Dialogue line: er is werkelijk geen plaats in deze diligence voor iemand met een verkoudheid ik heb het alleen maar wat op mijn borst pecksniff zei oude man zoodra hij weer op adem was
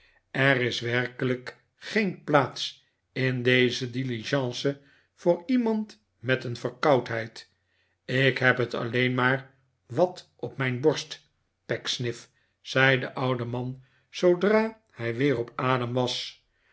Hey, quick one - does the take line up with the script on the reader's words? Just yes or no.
no